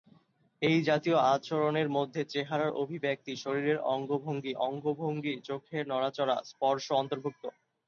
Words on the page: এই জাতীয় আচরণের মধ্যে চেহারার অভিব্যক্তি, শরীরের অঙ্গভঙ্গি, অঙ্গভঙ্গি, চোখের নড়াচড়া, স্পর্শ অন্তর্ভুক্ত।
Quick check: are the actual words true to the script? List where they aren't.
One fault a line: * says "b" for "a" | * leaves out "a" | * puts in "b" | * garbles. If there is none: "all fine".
all fine